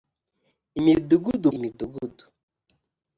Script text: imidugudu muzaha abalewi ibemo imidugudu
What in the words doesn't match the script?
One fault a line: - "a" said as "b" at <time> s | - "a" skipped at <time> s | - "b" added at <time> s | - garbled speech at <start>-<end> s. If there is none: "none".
- "muzaha abalewi ibemo" skipped at 1.5 s